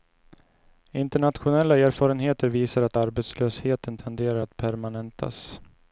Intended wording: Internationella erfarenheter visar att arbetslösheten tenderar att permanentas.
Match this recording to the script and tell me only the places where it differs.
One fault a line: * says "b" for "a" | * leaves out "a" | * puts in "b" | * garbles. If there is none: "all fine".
all fine